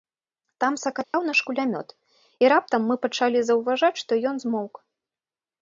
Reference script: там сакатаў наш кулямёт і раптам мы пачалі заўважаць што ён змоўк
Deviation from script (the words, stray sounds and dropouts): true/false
true